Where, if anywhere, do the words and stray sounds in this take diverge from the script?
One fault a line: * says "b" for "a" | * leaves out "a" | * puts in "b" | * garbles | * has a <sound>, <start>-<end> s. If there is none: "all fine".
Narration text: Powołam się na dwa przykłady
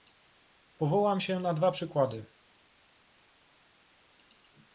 all fine